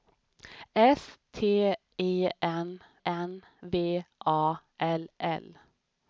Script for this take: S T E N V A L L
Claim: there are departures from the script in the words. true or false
true